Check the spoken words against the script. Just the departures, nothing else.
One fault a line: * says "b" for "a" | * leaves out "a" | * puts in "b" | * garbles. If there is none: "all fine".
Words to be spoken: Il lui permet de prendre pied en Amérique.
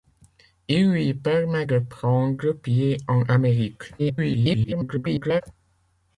* garbles